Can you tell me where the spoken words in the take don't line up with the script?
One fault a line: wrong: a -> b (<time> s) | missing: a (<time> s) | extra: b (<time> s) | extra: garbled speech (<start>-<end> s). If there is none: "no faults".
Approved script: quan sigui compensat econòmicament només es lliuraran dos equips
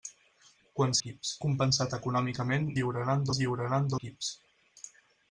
wrong: sigui -> equips (1.0 s)
wrong: només -> lliuraran (2.8 s)
missing: dos (3.9 s)